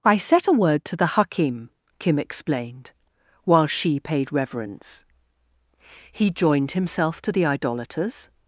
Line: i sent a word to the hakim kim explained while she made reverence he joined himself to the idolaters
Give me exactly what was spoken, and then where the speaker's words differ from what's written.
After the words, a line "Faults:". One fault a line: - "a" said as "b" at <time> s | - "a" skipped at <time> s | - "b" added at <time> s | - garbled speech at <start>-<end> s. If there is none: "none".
i set a word to the hakim kim explained while she paid reverence he joined himself to the idolaters
Faults:
- "sent" said as "set" at 0.2 s
- "made" said as "paid" at 4.0 s